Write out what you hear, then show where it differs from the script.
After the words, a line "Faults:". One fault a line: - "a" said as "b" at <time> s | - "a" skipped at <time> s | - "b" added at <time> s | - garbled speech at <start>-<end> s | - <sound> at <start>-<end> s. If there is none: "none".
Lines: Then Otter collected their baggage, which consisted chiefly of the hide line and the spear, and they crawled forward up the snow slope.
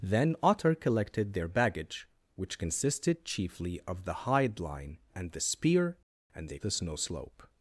Then Otter collected their baggage, which consisted chiefly of the hide line and the spear, and they the snow slope.
Faults:
- "crawled forward up" skipped at 6.6 s